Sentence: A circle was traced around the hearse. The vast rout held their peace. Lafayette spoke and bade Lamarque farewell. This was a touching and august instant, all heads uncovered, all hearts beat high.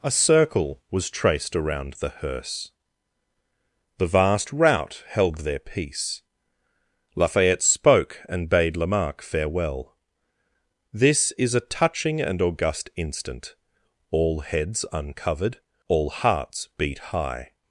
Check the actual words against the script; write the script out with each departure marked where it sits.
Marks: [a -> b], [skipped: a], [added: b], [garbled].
A circle was traced around the hearse. The vast rout held their peace. Lafayette spoke and bade Lamarque farewell. This [was -> is] a touching and august instant, all heads uncovered, all hearts beat high.